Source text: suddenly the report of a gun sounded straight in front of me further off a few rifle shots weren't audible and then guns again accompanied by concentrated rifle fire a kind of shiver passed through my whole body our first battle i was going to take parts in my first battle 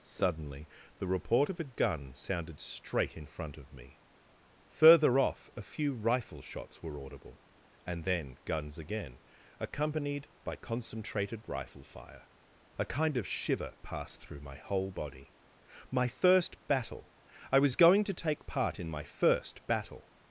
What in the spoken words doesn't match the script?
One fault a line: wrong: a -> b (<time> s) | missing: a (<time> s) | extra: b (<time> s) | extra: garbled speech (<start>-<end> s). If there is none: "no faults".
wrong: weren't -> were (6.8 s)
wrong: our -> my (15.9 s)
wrong: parts -> part (18.5 s)